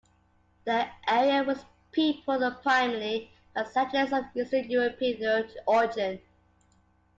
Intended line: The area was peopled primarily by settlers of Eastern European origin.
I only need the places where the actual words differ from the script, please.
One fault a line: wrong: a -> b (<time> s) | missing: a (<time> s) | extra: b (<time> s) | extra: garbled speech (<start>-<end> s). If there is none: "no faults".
no faults